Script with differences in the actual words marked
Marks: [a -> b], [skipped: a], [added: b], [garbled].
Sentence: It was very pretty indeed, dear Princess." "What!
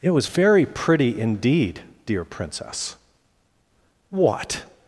It was very pretty indeed, dear Princess." "What!